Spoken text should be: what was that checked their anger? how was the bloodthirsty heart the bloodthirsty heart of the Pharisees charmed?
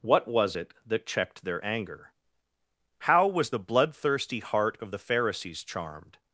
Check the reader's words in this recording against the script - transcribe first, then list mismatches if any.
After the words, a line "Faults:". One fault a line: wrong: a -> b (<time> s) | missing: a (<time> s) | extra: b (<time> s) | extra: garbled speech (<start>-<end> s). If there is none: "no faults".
what was it that checked their anger? how was the bloodthirsty heart of the Pharisees charmed?
Faults:
extra: it (0.6 s)
missing: the bloodthirsty heart (4.8 s)